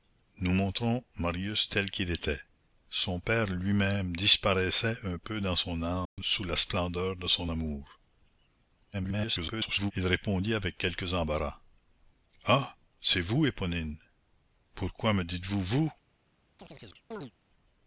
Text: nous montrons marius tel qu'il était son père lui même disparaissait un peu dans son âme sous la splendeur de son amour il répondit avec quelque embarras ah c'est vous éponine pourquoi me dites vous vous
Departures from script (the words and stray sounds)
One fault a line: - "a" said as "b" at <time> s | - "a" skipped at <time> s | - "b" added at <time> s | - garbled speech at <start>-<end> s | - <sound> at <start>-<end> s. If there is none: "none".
- dropout at 6.1-6.2 s
- garbled speech at 8.9-9.9 s
- chirp at 16.6-17.3 s